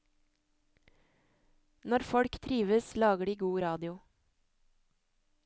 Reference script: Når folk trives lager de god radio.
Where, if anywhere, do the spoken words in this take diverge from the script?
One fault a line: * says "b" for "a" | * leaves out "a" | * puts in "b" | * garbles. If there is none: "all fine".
all fine